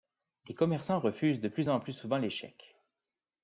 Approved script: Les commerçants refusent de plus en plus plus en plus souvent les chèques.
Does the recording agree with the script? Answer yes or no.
no